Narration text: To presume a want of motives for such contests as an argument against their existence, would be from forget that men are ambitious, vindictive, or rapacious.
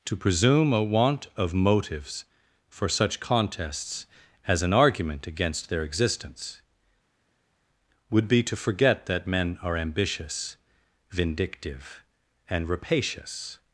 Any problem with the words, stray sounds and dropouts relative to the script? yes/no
yes